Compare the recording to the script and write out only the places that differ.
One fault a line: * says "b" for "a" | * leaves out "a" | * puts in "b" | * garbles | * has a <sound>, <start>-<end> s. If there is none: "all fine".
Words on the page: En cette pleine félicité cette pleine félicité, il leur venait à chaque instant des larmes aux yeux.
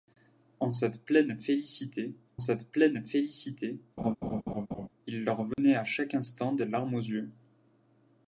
* has a laugh, 4.0-4.9 s
* has a dropout, 5.5-5.6 s